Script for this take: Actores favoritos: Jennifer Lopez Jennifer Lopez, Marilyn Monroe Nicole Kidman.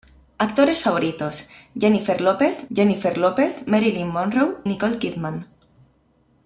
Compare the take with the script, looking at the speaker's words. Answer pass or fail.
pass